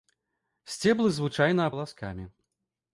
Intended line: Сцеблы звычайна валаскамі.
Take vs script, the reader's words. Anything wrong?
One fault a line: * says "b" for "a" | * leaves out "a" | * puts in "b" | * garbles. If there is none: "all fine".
all fine